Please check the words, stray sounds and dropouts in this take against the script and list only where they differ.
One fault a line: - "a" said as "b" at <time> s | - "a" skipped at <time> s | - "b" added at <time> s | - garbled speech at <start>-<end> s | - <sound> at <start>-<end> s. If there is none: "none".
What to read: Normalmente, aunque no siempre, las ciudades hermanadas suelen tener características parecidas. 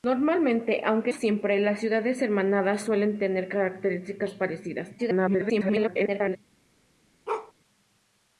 - "no" skipped at 1.1 s
- garbled speech at 5.0-6.4 s
- bark at 7.3-7.5 s